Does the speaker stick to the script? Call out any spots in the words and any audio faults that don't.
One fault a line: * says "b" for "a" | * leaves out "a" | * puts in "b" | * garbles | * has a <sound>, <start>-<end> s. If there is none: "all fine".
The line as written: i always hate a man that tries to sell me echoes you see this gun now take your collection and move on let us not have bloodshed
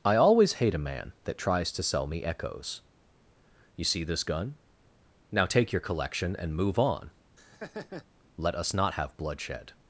* has a laugh, 7.4-8.1 s